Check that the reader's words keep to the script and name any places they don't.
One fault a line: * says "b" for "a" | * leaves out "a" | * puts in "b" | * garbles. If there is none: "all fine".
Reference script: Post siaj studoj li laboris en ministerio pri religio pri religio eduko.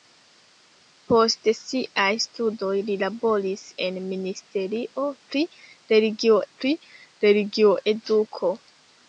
all fine